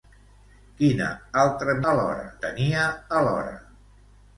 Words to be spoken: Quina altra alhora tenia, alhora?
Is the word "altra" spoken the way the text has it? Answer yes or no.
yes